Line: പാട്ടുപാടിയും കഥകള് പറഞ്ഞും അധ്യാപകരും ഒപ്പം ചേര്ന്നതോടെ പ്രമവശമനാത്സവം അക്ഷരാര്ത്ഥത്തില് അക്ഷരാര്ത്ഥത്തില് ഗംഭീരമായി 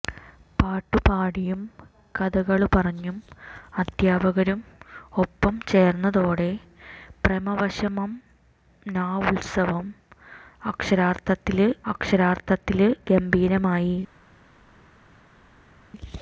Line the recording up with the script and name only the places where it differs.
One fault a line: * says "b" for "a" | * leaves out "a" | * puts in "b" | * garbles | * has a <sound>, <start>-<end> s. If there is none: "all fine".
all fine